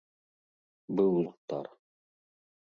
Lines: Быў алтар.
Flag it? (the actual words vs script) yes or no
no